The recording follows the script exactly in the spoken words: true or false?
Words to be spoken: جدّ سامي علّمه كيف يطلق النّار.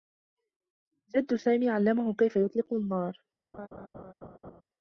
true